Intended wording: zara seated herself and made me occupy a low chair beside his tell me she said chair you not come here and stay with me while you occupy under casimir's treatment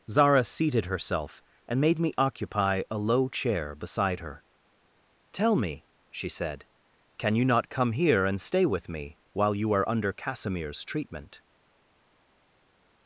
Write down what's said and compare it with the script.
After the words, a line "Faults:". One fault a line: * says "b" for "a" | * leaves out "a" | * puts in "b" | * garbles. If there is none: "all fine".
zara seated herself and made me occupy a low chair beside her tell me she said can you not come here and stay with me while you are under casimir's treatment
Faults:
* says "her" for "his"
* says "can" for "chair"
* says "are" for "occupy"